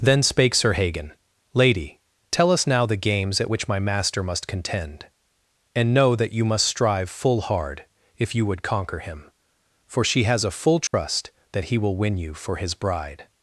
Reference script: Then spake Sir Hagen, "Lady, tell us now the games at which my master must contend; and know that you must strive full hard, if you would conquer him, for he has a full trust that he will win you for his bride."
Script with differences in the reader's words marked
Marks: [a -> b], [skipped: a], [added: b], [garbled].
Then spake Sir Hagen, "Lady, tell us now the games at which my master must contend; and know that you must strive full hard, if you would conquer him, for [he -> she] has a full trust that he will win you for his bride."